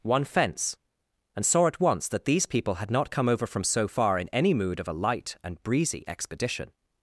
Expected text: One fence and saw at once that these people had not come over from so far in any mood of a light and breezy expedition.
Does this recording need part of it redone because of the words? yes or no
no